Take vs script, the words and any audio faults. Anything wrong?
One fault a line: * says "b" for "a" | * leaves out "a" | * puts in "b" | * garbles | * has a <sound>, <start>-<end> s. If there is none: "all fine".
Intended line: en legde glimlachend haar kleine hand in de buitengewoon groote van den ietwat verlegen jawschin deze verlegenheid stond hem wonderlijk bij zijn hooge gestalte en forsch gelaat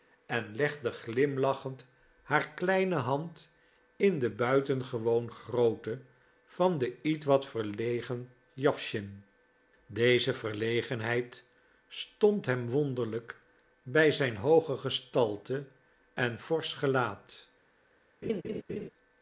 * has a laugh, 18.2-18.9 s